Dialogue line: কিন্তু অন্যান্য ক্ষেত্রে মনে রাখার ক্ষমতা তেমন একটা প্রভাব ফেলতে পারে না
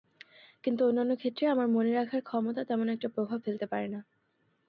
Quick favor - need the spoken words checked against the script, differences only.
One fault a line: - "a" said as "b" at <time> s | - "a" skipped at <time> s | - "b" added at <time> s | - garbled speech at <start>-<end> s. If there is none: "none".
- "আমার" added at 1.5 s